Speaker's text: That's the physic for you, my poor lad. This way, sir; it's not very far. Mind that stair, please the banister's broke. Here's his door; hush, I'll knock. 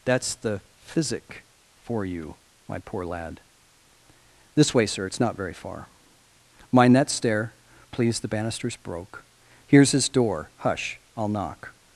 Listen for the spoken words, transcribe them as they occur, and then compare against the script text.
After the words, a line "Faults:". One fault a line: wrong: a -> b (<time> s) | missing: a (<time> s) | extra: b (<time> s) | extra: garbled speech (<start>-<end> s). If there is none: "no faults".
That's the physic for you, my poor lad. This way, sir; it's not very far. Mind that stair, please the banister's broke. Here's his door; hush, I'll knock.
Faults:
no faults